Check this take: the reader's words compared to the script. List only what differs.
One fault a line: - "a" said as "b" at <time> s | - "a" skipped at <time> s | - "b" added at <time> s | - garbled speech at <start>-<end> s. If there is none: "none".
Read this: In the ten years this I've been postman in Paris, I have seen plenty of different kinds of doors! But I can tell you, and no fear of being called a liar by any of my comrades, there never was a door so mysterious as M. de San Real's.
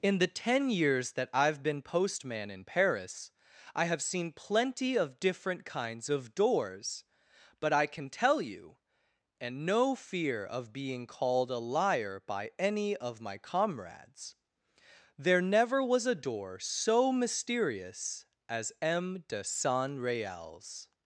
- "this" said as "that" at 1.1 s